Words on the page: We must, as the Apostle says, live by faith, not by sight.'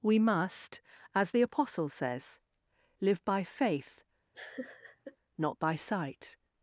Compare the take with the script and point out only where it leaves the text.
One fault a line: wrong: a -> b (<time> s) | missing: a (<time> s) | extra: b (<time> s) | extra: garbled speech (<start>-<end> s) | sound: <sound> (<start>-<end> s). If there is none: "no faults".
sound: laugh (4.3-5.2 s)